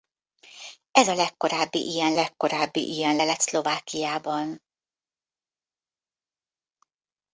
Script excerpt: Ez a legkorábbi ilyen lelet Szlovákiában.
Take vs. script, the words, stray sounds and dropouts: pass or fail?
fail